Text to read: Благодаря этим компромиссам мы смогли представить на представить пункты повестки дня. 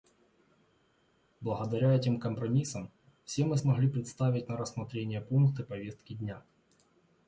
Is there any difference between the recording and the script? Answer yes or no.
yes